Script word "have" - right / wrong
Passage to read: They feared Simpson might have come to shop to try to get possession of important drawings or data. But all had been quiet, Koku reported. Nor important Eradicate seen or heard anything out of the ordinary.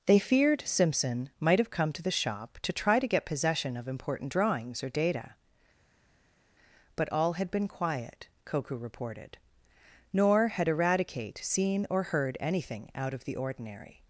right